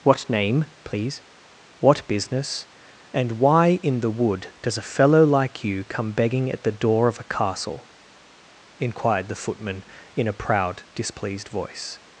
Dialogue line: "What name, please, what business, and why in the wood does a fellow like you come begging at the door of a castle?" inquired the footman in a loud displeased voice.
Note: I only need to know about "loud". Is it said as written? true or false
false